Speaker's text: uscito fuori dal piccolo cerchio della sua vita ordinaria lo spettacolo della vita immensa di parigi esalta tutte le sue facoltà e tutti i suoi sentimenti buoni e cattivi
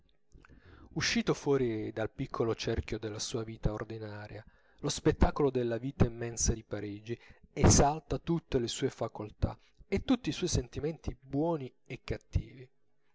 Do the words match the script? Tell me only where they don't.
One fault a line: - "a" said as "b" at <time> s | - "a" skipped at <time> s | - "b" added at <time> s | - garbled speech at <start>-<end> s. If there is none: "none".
none